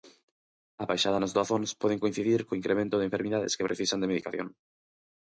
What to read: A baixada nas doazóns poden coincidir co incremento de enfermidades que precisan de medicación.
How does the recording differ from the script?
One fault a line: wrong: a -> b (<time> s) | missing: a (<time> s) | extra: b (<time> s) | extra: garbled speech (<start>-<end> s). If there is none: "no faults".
no faults